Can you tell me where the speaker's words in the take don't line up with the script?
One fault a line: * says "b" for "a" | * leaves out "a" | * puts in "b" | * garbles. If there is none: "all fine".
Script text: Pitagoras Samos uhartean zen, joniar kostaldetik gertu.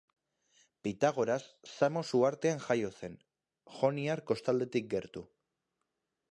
* puts in "jaio"